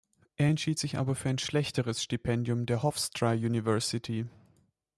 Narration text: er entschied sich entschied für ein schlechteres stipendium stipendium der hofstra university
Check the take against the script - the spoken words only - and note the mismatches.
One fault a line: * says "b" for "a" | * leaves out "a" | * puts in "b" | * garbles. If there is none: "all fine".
* says "aber" for "entschied"
* leaves out "stipendium"